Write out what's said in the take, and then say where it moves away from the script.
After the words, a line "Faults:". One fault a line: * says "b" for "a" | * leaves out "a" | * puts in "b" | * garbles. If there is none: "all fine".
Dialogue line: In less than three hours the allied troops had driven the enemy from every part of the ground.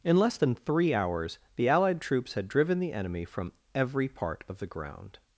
In less than three hours the allied troops had driven the enemy from every part of the ground.
Faults:
all fine